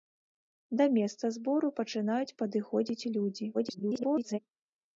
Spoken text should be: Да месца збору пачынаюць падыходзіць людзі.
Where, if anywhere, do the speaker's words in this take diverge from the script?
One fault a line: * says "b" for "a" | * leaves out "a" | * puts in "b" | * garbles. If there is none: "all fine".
* garbles